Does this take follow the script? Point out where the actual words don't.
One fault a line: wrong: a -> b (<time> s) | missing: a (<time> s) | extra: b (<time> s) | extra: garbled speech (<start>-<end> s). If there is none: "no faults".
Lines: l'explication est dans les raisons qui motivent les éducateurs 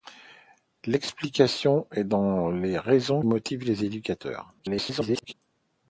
missing: qui (3.2 s)
extra: garbled speech (4.6-5.3 s)